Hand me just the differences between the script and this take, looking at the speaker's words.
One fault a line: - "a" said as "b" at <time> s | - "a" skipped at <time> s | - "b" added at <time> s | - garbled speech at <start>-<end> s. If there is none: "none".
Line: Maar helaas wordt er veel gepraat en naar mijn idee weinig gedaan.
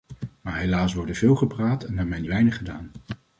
- "idee" skipped at 2.3 s